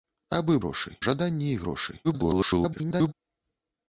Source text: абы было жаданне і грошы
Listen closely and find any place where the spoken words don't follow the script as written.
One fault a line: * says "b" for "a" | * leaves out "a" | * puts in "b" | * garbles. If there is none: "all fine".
* says "грошы" for "было"
* garbles